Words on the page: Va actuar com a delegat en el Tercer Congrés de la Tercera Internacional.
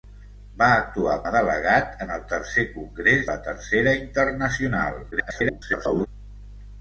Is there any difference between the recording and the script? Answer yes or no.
yes